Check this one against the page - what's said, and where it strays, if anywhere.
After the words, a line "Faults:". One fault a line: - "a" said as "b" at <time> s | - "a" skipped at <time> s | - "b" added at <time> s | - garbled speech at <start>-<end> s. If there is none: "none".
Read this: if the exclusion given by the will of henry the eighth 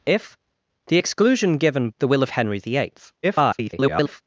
if the exclusion given the will of henry the eighth [garbled]
Faults:
- "by" skipped at 1.9 s
- garbled speech at 3.2-4.2 s